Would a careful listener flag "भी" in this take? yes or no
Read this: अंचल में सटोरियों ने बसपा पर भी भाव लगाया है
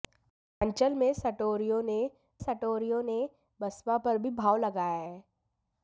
no